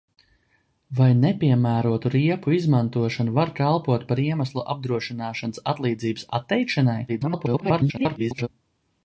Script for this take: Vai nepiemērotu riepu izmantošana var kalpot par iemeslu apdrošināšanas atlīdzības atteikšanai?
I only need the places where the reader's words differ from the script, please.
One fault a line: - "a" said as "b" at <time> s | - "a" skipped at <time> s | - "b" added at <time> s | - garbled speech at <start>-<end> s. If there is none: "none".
- garbled speech at 7.1-8.5 s